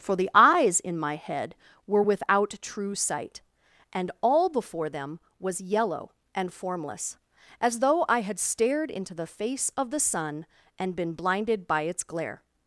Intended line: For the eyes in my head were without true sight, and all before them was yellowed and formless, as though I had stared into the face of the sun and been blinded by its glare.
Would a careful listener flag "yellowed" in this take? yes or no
yes